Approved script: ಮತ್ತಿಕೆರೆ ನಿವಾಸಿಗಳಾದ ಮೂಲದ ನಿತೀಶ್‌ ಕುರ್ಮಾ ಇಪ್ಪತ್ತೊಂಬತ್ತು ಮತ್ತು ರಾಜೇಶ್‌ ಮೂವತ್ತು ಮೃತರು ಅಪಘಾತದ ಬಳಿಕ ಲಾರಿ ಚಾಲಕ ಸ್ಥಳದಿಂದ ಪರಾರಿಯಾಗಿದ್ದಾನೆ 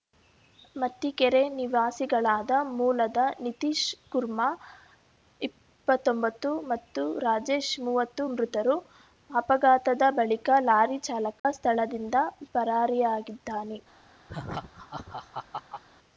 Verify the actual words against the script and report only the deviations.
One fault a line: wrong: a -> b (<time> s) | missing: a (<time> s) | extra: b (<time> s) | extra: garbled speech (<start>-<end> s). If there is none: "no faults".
no faults